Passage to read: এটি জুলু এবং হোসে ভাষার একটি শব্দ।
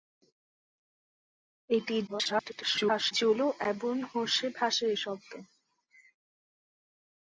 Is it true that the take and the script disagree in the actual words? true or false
true